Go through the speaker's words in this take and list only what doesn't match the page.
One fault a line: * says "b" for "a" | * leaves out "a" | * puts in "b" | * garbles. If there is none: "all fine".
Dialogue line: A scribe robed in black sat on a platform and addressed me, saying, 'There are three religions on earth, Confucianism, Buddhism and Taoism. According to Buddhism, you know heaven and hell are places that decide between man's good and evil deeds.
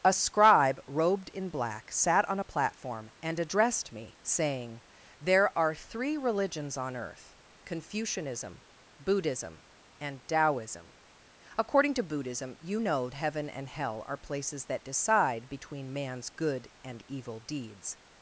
all fine